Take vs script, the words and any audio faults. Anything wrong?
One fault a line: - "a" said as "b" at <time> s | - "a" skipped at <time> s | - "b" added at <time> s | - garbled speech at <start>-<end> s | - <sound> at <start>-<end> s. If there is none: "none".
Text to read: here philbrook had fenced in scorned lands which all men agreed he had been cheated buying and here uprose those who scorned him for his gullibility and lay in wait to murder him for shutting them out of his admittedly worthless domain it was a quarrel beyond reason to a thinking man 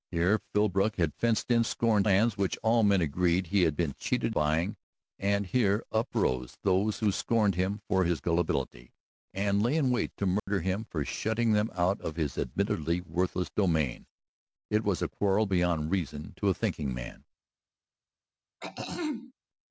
- dropout at 10.4-10.5 s
- throat clearing at 18.6-19.3 s